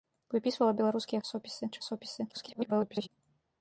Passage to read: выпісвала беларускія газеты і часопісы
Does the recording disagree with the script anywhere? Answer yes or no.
yes